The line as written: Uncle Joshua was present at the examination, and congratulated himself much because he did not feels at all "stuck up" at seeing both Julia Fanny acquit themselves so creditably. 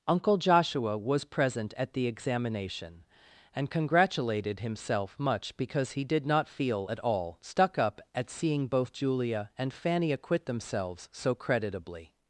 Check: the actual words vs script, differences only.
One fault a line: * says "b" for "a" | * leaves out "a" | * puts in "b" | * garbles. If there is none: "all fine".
* says "feel" for "feels"
* puts in "and"